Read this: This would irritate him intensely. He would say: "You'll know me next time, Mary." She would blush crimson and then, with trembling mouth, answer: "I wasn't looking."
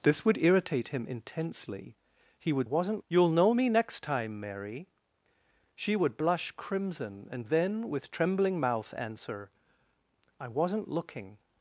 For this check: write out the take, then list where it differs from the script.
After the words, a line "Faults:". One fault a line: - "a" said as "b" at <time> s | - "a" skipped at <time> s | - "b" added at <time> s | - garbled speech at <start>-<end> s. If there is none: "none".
This would irritate him intensely. He would wasn't: "You'll know me next time, Mary." She would blush crimson and then, with trembling mouth, answer: "I wasn't looking."
Faults:
- "say" said as "wasn't" at 2.6 s